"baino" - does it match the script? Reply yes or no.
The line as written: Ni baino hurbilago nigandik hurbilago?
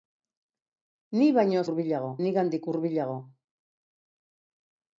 yes